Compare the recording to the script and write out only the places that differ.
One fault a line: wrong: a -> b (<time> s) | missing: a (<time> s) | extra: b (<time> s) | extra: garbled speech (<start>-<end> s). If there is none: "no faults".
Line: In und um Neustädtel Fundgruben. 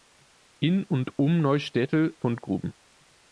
no faults